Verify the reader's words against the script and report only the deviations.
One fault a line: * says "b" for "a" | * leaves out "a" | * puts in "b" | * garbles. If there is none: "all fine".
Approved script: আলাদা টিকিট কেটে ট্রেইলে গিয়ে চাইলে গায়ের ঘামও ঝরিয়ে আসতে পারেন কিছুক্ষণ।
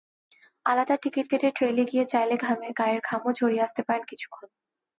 all fine